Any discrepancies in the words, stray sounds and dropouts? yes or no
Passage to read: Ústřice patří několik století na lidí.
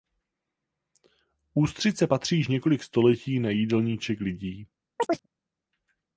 yes